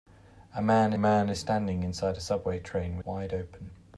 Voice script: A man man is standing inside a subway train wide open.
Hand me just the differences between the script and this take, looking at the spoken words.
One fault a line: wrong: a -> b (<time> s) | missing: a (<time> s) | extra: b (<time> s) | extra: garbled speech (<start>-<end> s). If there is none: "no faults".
no faults